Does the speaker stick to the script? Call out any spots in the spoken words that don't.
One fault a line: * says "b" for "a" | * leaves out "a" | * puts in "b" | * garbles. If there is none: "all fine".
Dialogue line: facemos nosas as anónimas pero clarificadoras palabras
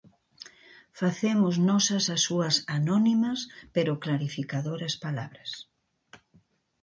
* puts in "súas"